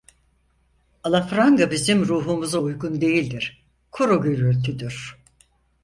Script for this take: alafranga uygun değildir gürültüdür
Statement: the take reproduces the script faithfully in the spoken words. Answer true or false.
false